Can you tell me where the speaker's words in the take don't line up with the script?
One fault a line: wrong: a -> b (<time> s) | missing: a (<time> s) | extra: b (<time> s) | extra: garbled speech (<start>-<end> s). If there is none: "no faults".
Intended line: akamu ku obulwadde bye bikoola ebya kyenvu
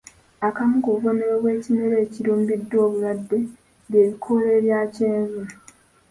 extra: bubonero bw'ekimera ekirumbiddwa (0.9 s)